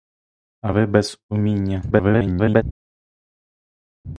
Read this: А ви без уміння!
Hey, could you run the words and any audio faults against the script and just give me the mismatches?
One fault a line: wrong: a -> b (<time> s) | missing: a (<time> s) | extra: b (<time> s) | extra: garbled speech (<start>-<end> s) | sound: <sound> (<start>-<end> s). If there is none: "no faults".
extra: garbled speech (1.9-2.6 s)